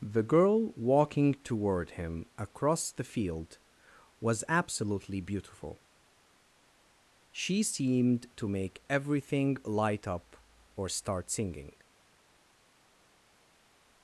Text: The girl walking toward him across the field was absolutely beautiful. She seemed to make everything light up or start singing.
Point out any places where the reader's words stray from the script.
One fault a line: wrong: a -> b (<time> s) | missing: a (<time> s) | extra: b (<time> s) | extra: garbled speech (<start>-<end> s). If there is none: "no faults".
no faults